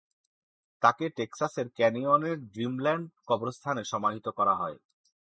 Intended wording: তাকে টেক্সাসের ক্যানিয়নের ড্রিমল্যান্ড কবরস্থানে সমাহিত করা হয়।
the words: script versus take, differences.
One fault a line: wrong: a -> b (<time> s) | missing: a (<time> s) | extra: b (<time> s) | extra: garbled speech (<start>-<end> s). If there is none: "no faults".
no faults